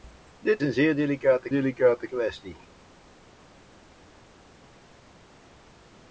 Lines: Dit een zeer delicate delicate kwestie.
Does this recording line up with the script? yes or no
yes